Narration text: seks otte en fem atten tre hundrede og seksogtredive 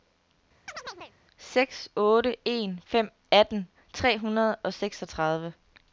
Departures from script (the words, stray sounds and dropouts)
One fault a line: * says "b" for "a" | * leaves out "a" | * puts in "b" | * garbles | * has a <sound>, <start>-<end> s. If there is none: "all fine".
* has a chirp, 0.7-1.1 s